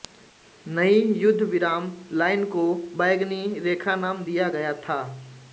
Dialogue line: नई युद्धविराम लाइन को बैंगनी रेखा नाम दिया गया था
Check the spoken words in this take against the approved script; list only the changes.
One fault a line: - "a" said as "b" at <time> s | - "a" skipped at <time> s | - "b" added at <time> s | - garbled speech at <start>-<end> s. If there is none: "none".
none